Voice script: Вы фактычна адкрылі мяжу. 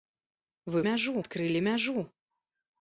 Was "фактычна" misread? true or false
true